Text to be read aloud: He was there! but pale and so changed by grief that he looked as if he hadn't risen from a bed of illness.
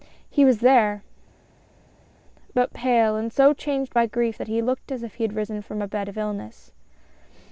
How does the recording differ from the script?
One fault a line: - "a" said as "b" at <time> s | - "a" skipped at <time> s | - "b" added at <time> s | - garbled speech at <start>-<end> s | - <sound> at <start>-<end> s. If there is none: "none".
- "hadn't" said as "had" at 5.2 s